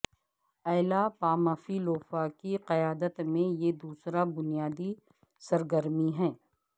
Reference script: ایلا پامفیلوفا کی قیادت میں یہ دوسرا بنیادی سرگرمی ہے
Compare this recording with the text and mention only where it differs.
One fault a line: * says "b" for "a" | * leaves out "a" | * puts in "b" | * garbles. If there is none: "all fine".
all fine